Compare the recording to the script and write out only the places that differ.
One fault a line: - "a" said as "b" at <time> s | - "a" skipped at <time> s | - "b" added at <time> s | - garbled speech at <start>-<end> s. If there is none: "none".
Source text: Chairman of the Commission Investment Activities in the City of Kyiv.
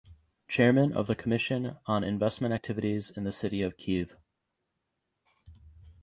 - "on" added at 1.9 s